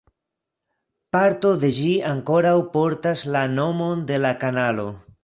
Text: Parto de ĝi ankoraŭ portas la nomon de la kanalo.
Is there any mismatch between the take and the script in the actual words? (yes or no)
no